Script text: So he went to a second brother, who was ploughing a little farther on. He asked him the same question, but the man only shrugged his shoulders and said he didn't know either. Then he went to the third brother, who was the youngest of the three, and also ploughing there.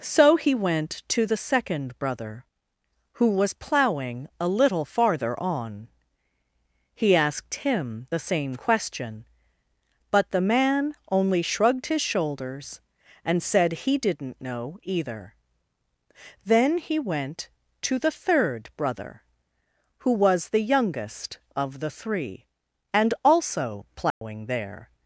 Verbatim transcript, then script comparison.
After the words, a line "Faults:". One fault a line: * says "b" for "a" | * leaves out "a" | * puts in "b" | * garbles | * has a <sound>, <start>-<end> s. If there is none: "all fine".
So he went to the second brother, who was ploughing a little farther on. He asked him the same question, but the man only shrugged his shoulders and said he didn't know either. Then he went to the third brother, who was the youngest of the three, and also ploughing there.
Faults:
* says "the" for "a"
* has a dropout, 24.1-24.2 s